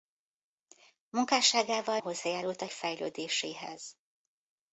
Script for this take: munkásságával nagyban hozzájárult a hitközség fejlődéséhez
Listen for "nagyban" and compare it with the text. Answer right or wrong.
wrong